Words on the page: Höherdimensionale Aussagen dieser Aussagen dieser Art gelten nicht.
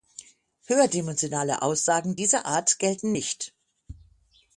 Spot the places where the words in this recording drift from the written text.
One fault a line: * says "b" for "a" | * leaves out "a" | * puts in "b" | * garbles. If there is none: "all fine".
* leaves out "Aussagen dieser"